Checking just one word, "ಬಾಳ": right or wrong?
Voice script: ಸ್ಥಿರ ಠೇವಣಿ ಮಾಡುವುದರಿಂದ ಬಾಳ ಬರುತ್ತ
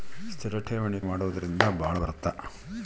right